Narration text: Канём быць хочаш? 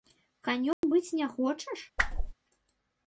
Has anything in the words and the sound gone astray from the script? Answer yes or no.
yes